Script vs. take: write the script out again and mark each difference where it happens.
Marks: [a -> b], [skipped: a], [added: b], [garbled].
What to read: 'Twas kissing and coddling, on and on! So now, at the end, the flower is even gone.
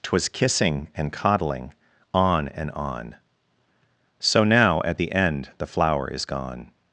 'Twas kissing and coddling, on and on! So now, at the end, the flower is [skipped: even] gone.